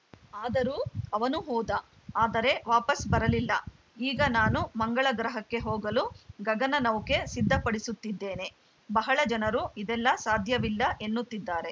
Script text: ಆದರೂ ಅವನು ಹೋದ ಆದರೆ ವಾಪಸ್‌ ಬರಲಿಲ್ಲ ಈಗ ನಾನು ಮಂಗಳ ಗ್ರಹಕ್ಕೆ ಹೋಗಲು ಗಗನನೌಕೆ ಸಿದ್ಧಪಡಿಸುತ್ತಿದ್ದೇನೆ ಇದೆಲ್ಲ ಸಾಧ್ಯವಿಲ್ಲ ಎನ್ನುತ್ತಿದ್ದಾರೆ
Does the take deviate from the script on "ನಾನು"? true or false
false